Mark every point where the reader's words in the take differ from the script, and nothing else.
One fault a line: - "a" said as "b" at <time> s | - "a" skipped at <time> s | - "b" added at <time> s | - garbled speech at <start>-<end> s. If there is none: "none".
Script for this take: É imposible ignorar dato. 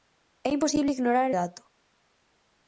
none